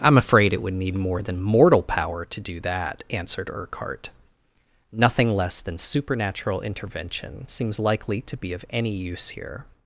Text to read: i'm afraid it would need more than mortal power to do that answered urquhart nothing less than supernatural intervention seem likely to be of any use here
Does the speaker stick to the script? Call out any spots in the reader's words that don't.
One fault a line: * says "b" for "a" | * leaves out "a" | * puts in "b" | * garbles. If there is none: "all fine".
* says "seems" for "seem"